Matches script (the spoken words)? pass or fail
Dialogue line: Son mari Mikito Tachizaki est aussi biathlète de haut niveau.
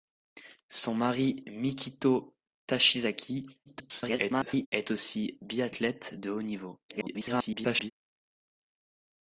fail